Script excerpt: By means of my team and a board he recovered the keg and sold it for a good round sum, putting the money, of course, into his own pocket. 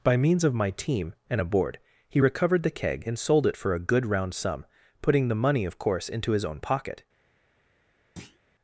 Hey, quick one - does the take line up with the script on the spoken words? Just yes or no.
yes